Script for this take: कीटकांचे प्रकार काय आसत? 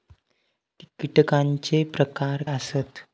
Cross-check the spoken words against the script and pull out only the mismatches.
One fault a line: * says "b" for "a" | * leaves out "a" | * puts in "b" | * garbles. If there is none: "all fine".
* leaves out "काय"